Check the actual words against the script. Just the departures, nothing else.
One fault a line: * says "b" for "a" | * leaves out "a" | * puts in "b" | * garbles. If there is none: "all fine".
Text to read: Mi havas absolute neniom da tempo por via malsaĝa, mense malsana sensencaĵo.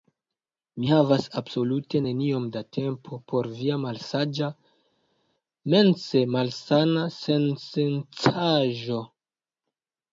all fine